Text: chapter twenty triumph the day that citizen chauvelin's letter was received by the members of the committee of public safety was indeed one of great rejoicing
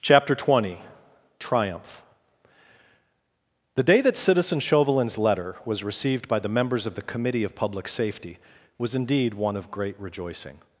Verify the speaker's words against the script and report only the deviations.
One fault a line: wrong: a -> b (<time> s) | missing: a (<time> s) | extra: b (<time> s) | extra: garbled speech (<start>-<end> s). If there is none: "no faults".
no faults